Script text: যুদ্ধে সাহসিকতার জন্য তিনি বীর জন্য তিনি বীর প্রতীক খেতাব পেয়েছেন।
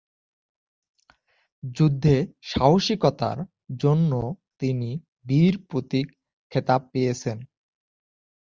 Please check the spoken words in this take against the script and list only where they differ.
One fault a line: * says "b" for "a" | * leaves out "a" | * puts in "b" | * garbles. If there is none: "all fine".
* leaves out "জন্য তিনি বীর"